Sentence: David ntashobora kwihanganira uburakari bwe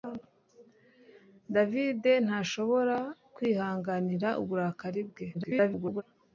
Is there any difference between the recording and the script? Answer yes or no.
yes